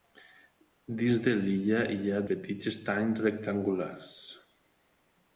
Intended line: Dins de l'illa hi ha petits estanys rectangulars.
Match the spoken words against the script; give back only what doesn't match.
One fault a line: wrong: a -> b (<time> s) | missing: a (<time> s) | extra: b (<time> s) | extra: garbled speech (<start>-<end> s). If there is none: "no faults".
no faults